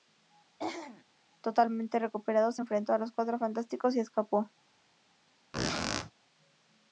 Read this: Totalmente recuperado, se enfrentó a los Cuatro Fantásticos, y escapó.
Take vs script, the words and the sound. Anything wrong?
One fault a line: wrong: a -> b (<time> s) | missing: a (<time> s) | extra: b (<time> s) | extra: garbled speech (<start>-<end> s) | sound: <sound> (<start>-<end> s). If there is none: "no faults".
sound: throat clearing (0.6-1.0 s)
sound: squeak (5.5-6.1 s)